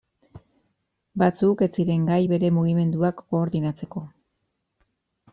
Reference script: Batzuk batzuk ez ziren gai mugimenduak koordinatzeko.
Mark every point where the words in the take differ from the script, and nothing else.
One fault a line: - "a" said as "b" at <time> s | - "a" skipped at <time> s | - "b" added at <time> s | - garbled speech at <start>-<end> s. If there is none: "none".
- "batzuk" skipped at 1.6 s
- "bere" added at 2.3 s